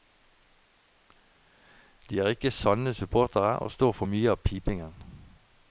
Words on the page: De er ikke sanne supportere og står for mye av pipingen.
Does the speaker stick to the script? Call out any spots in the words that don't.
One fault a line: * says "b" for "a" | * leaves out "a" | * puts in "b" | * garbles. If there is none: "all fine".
all fine